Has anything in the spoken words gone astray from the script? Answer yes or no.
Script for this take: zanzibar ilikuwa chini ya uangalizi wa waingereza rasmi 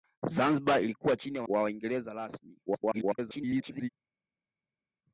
yes